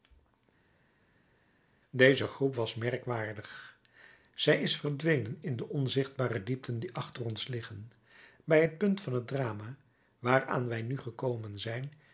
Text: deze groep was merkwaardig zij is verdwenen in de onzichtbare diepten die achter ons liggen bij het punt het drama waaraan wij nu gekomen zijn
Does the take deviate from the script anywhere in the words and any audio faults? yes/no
yes